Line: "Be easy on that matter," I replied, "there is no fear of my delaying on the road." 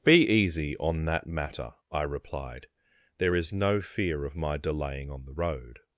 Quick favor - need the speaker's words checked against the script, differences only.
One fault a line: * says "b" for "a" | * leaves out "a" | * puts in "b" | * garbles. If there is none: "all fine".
all fine